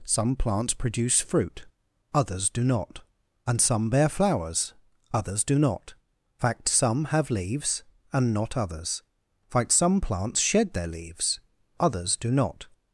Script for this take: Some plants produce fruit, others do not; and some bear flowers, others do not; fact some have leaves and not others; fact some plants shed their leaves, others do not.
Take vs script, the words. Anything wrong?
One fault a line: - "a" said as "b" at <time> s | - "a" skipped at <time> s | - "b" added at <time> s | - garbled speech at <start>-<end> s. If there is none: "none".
none